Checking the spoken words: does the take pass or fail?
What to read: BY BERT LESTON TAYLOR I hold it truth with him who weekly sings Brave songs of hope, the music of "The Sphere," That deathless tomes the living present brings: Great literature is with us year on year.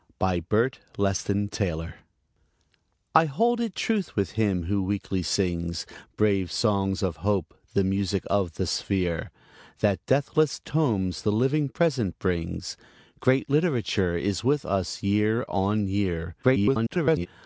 fail